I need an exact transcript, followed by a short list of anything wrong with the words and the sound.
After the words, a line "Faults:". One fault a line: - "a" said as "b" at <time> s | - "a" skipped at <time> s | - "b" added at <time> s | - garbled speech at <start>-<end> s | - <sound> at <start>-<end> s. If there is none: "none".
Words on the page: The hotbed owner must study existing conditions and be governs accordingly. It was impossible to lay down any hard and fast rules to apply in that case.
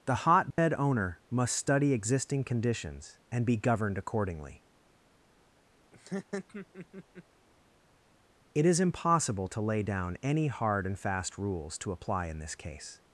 The hotbed owner must study existing conditions and be governed accordingly. It is impossible to lay down any hard and fast rules to apply in this case.
Faults:
- dropout at 0.5-0.6 s
- "governs" said as "governed" at 3.5 s
- laugh at 5.9-7.2 s
- "was" said as "is" at 8.7 s
- "that" said as "this" at 12.4 s